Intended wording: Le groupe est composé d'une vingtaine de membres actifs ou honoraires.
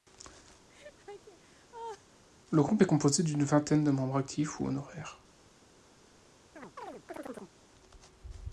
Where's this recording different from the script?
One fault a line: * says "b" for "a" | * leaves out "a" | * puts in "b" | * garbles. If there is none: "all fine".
all fine